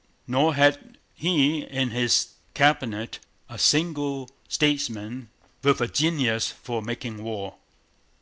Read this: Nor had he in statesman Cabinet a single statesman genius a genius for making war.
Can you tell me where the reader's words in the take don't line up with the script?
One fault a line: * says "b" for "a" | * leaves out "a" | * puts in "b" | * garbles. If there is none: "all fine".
* says "his" for "statesman"
* says "with" for "genius"